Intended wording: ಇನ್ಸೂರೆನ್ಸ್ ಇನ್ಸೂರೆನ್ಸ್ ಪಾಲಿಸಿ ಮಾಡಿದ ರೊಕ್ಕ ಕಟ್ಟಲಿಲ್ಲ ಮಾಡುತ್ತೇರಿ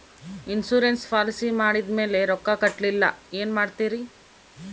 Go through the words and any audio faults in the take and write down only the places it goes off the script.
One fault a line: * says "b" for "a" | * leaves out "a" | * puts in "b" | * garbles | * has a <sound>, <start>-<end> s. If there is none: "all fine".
* leaves out "ಇನ್ಸೂರೆನ್ಸ್"
* puts in "ಮೇಲೆ"
* puts in "ಏನು"